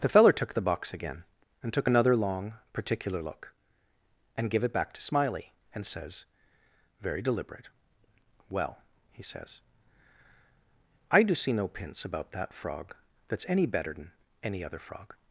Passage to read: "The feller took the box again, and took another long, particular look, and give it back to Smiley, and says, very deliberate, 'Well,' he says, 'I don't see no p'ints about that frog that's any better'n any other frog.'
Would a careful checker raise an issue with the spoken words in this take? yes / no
yes